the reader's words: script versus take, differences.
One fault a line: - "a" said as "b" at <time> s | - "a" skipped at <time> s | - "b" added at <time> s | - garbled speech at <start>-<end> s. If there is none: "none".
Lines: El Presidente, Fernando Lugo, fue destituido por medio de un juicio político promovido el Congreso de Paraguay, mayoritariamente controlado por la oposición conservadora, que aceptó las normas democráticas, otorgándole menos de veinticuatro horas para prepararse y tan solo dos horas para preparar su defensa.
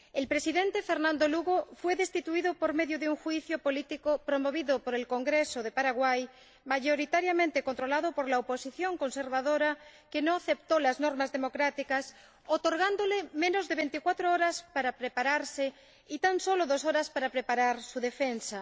- "por" added at 4.8 s
- "no" added at 10.2 s